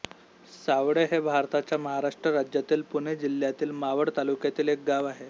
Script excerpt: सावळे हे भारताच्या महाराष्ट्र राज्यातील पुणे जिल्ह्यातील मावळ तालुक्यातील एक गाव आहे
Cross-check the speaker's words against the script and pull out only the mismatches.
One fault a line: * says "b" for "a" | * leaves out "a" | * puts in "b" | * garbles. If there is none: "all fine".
all fine